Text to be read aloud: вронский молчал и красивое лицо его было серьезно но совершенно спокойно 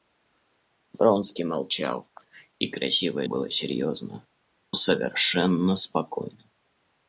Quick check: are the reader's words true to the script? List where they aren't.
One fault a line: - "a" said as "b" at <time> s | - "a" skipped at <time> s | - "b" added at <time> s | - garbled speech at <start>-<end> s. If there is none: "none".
- "лицо его" skipped at 3.2 s
- "но" skipped at 4.3 s